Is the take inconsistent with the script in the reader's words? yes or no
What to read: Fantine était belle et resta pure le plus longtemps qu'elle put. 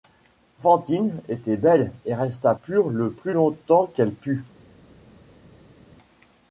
no